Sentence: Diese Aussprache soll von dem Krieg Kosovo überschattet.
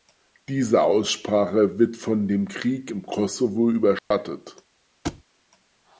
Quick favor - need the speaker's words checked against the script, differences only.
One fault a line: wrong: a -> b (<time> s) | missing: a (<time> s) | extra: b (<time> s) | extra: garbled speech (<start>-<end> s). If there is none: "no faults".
wrong: soll -> wird (1.8 s)
extra: im (2.9 s)